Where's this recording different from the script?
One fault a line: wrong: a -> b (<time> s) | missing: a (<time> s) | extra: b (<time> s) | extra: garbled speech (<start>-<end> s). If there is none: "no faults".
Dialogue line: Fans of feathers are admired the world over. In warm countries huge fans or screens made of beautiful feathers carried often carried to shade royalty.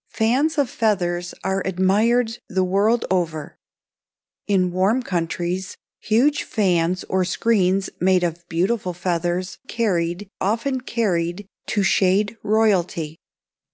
no faults